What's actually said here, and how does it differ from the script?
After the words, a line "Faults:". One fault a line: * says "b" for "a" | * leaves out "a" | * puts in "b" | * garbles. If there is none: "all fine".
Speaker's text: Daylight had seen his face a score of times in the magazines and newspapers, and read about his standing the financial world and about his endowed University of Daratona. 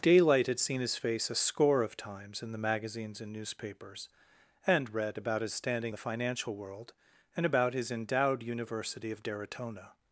Daylight had seen his face a score of times in the magazines and newspapers, and read about his standing the financial world and about his endowed University of Daratona.
Faults:
all fine